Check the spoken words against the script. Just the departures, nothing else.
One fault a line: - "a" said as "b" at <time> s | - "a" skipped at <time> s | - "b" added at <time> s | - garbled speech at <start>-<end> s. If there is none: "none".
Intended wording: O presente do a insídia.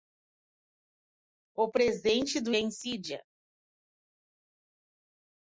none